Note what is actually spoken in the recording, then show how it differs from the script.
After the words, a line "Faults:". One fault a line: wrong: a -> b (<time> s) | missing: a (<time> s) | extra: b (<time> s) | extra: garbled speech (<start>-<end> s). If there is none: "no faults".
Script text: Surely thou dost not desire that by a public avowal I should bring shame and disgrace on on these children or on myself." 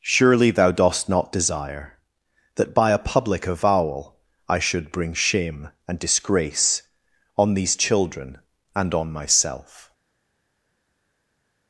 Surely thou dost not desire that by a public avowal I should bring shame and disgrace on these children and on myself."
Faults:
missing: on (7.5 s)
wrong: or -> and (8.8 s)